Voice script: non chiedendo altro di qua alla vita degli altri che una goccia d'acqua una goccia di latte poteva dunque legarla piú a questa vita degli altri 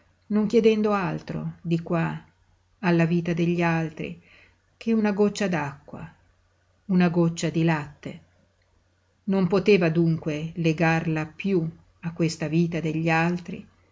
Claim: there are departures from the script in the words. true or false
true